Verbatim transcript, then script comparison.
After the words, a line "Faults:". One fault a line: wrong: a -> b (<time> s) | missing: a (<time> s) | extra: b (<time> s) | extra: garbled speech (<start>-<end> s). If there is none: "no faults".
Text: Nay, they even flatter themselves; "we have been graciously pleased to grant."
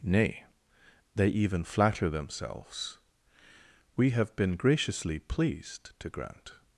Nay, they even flatter themselves; "we have been graciously pleased to grant."
Faults:
no faults